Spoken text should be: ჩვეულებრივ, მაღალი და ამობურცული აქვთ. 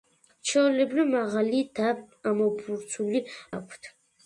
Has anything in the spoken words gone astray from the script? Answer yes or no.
no